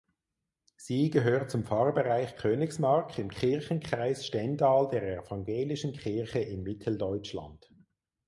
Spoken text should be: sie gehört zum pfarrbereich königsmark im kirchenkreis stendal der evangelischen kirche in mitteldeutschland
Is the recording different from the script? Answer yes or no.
no